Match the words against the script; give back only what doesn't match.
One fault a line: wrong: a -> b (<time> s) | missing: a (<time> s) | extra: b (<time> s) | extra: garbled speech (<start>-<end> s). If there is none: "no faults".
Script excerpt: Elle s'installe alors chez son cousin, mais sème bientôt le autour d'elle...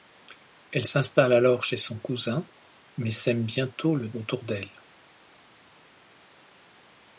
no faults